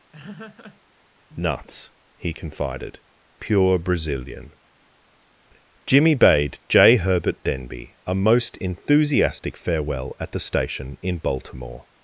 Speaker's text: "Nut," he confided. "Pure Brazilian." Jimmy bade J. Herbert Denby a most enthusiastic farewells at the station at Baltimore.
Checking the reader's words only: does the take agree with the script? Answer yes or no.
no